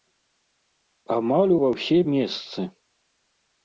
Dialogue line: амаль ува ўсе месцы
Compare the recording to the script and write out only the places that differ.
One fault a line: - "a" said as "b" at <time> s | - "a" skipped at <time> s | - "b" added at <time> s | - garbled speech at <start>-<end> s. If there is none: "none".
none